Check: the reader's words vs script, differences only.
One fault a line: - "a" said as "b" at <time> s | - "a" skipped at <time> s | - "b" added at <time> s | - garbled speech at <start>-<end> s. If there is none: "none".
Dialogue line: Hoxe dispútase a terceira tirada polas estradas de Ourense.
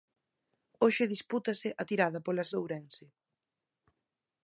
- "terceira" skipped at 1.8 s
- "estradas" skipped at 2.5 s